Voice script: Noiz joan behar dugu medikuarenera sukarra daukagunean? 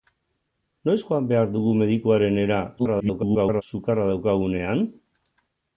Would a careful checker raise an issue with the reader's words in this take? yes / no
yes